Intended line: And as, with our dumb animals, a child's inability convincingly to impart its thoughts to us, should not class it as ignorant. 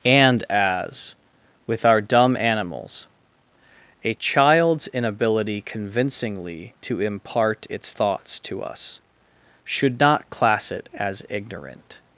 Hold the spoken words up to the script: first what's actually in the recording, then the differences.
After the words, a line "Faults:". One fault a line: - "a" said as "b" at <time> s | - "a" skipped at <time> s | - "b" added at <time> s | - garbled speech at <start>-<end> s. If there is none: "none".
And as, with our dumb animals, a child's inability convincingly to impart its thoughts to us, should not class it as ignorant.
Faults:
none